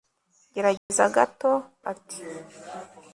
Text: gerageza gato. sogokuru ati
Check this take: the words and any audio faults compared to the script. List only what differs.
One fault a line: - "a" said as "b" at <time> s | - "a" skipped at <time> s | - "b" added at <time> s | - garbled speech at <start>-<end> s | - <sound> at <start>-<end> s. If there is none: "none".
- dropout at 0.8-0.9 s
- "sogokuru" skipped at 1.5 s